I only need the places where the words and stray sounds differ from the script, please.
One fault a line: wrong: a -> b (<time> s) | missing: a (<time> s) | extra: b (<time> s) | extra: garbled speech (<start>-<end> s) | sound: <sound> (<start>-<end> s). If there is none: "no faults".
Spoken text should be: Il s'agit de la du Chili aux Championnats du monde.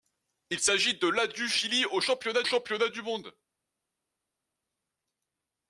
extra: Championnats (2.4 s)